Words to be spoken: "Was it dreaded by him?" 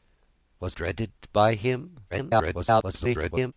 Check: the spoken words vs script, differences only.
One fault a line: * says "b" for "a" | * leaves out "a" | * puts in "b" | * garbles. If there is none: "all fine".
* leaves out "it"
* garbles